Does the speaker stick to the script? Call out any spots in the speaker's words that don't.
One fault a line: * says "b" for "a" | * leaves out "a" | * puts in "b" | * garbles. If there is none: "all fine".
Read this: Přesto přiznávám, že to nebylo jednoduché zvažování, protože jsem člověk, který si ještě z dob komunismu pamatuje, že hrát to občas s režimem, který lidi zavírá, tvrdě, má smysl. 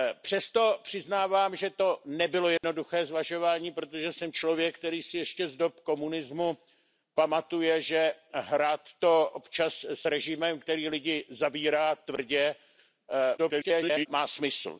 * garbles